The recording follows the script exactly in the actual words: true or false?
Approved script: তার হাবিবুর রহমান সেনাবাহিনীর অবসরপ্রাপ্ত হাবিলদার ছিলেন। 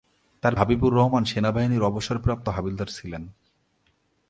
true